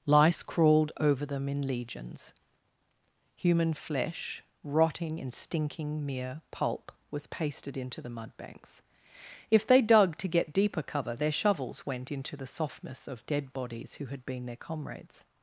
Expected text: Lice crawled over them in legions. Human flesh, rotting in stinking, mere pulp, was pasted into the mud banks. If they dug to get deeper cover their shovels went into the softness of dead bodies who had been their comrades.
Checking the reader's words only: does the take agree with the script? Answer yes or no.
yes